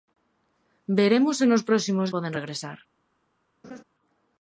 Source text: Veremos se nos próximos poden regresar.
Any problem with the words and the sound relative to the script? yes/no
yes